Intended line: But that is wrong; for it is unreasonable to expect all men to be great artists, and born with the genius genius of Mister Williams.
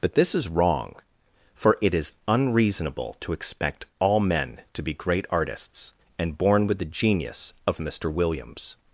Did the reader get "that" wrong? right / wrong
wrong